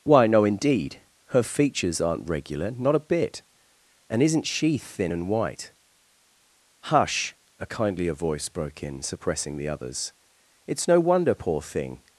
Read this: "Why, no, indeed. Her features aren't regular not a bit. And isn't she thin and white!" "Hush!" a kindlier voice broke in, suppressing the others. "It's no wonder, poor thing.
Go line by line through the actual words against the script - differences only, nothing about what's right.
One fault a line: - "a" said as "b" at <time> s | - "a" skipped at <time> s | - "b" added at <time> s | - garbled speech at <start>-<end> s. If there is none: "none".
none